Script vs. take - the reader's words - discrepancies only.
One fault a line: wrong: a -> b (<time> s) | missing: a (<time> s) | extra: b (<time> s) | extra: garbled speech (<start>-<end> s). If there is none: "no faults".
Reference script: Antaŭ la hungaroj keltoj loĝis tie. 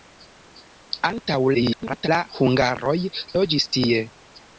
extra: garbled speech (1.5-2.1 s)
missing: keltoj (3.0 s)